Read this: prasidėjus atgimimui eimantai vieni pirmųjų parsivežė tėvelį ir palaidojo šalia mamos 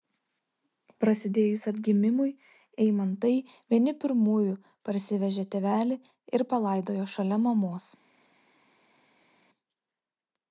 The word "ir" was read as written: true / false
true